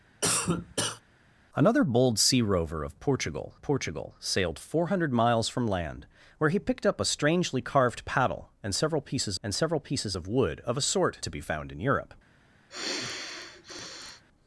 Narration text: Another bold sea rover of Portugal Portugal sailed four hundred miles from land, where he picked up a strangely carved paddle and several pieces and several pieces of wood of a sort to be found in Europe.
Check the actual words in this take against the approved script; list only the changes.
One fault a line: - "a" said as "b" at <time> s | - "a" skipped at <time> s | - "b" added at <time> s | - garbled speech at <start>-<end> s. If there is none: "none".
none